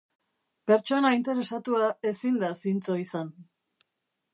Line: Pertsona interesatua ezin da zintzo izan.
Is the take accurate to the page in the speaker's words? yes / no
yes